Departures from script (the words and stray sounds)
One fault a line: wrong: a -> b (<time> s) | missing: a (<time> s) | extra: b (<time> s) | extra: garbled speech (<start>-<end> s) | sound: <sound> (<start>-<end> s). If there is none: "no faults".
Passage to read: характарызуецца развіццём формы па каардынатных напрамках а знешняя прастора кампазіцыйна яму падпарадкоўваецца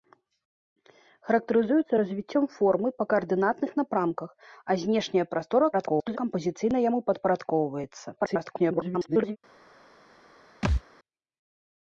extra: garbled speech (5.7-6.2 s)
extra: garbled speech (8.2-9.4 s)
sound: thud (10.6-10.8 s)